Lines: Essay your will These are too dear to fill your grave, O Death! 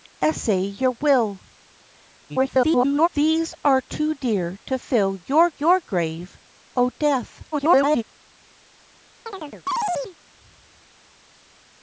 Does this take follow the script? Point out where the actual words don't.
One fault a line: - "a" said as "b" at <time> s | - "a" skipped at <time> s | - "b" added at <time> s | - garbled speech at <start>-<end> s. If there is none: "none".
- garbled speech at 2.3-3.1 s
- "your" added at 5.6 s
- garbled speech at 7.5-8.0 s